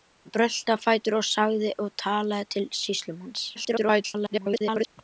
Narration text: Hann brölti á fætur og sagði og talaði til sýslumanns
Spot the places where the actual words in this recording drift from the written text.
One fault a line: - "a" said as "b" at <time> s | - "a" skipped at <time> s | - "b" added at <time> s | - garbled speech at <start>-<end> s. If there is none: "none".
- garbled speech at 3.5-4.9 s